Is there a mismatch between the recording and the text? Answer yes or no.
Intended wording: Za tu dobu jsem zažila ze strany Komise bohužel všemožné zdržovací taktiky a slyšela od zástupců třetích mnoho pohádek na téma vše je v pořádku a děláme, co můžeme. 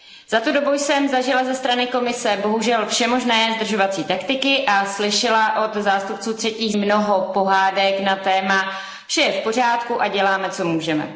no